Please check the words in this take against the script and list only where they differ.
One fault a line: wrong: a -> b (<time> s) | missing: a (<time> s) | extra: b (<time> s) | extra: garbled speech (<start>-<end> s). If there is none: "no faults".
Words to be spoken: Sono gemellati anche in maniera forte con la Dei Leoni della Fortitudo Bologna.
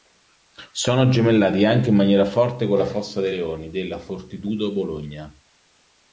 extra: Fossa (2.9 s)